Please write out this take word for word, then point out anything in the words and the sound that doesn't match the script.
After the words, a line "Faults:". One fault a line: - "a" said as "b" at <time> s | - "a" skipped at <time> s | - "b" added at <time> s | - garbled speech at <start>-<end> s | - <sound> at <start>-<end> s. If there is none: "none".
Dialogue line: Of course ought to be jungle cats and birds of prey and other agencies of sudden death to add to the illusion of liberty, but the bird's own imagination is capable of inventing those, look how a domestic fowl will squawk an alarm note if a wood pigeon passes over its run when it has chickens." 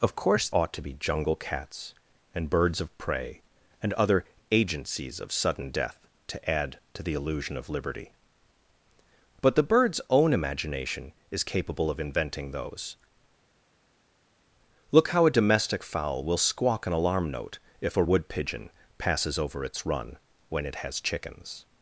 Of course ought to be jungle cats and birds of prey and other agencies of sudden death to add to the illusion of liberty, but the bird's own imagination is capable of inventing those, look how a domestic fowl will squawk an alarm note if a wood pigeon passes over its run when it has chickens."
Faults:
none